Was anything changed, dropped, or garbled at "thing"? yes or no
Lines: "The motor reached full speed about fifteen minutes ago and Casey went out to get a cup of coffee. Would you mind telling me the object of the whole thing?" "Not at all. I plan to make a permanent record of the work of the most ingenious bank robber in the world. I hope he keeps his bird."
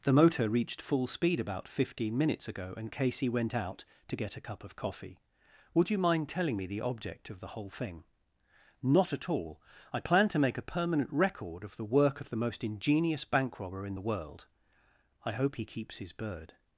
no